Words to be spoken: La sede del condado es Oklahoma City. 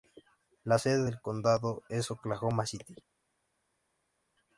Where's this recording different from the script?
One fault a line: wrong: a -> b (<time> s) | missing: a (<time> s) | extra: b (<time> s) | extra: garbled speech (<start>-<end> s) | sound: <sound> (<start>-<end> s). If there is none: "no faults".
no faults